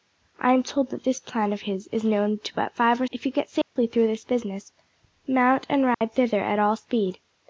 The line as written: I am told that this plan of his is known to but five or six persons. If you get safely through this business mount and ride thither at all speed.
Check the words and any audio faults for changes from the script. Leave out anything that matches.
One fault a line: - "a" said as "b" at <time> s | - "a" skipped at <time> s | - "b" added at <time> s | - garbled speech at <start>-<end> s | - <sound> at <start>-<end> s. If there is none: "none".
- "six persons" skipped at 3.0 s
- dropout at 3.6-3.8 s
- dropout at 5.9-6.0 s